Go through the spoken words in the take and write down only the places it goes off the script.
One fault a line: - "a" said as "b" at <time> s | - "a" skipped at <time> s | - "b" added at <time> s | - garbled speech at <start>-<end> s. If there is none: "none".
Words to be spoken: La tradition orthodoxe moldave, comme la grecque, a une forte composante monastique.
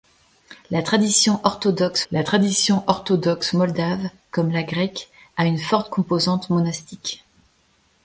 - "la tradition orthodoxe" added at 2.1 s